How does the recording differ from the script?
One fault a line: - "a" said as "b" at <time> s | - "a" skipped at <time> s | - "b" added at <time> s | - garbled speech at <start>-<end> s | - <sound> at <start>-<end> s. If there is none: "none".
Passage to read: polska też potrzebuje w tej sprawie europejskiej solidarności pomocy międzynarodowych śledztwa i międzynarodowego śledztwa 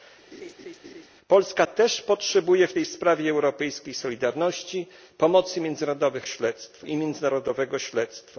- laugh at 0.3-1.1 s